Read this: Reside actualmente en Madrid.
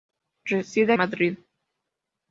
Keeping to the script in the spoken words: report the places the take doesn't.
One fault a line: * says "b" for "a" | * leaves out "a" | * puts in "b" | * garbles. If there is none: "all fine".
* leaves out "actualmente en"